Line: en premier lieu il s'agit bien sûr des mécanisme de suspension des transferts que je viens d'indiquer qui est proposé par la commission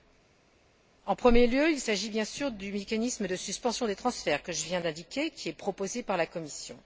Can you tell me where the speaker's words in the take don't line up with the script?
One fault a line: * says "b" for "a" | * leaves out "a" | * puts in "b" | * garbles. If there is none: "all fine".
* says "du" for "des"